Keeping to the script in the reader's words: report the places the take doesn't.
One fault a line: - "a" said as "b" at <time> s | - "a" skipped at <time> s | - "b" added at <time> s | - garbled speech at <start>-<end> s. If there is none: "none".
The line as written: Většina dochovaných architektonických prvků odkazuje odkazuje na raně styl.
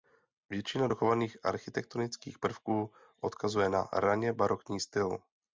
- "odkazuje" skipped at 3.7 s
- "barokní" added at 4.3 s